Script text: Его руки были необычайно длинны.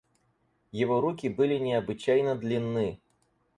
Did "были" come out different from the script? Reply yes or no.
no